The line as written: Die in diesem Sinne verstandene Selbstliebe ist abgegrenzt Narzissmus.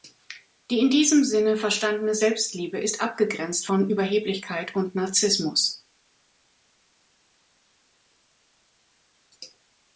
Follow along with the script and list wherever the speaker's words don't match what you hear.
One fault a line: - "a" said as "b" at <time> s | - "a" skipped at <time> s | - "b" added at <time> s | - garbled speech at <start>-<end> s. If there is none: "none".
- "von Überheblichkeit und" added at 3.6 s